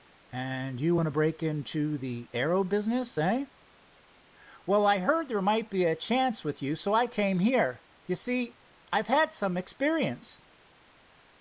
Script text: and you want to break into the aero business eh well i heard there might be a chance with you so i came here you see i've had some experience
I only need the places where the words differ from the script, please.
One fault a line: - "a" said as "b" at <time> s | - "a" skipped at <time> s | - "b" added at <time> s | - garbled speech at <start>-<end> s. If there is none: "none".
none